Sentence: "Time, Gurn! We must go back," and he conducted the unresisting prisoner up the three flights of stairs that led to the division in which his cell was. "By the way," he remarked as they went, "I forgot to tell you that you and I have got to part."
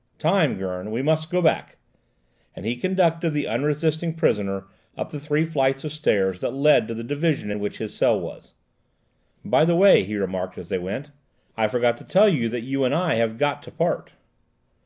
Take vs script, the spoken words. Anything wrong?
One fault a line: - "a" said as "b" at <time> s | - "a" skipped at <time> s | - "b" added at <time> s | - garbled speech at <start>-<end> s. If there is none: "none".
none